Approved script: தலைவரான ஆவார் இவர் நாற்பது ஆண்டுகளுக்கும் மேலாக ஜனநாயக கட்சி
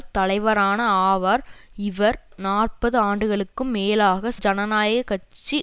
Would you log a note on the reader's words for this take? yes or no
no